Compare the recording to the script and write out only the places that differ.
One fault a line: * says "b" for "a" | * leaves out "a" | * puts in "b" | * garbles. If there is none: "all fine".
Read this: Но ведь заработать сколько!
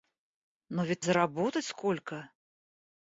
all fine